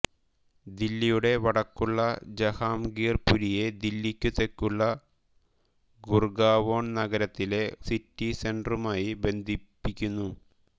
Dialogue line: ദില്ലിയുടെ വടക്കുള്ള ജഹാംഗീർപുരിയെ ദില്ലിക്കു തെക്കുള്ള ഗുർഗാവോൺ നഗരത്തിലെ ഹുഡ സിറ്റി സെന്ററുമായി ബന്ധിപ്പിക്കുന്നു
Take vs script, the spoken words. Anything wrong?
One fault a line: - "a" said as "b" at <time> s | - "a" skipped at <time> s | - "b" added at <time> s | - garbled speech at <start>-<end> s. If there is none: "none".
- "ഹുഡ" skipped at 7.6 s